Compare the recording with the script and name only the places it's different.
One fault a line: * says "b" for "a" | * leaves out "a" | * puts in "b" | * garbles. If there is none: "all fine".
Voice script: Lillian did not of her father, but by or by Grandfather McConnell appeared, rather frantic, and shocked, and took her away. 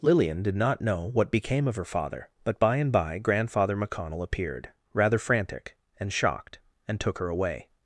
* puts in "know what became"
* says "and" for "or"